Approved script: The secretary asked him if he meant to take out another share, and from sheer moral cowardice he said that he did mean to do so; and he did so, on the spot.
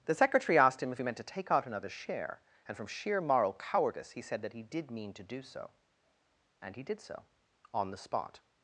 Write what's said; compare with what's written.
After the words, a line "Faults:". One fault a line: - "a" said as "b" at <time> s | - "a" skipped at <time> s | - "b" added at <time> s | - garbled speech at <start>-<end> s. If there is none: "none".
The secretary asked him if he meant to take out another share, and from sheer moral cowardice he said that he did mean to do so; and he did so, on the spot.
Faults:
none